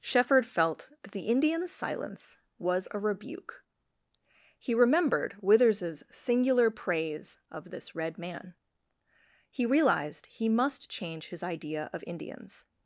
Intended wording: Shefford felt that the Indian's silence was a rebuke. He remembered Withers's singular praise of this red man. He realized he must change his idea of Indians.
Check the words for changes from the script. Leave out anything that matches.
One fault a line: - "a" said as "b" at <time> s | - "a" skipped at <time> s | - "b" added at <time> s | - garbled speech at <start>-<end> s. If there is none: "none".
none